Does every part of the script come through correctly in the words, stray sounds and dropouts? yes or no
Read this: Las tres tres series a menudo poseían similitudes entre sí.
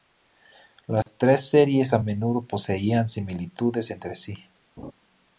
no